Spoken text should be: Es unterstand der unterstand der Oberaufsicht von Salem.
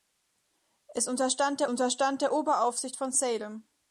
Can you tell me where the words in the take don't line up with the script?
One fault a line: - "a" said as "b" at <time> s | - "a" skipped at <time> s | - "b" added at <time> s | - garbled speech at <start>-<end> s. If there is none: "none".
none